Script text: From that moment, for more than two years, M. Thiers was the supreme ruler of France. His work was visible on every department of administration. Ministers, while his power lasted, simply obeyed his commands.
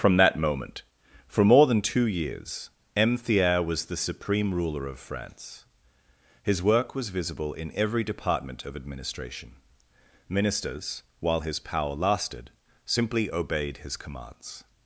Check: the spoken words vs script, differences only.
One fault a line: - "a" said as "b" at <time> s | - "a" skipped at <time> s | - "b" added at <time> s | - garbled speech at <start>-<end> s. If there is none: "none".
- "on" said as "in" at 7.5 s